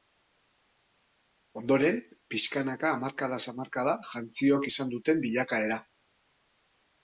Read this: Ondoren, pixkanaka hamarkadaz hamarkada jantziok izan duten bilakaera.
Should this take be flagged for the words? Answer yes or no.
no